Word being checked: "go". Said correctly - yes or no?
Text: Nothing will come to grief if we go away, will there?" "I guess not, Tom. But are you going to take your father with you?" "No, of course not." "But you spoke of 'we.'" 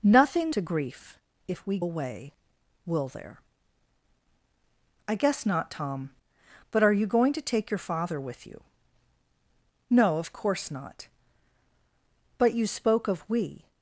no